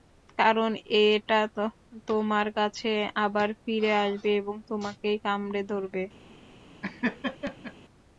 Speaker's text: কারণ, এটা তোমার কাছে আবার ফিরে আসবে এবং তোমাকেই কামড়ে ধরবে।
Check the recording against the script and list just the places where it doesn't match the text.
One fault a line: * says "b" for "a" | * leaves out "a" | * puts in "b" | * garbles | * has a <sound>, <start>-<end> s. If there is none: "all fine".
* has a laugh, 6.8-7.7 s